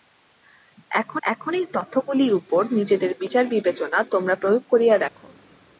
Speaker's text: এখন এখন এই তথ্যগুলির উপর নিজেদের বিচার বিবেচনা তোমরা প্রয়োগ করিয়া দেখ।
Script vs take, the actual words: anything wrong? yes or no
no